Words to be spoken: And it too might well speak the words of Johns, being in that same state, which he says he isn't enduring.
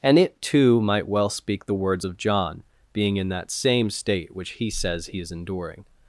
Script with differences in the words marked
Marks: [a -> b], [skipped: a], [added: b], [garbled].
And it too might well speak the words of [Johns, -> John] being in that same state, which he says he [isn't -> is] enduring.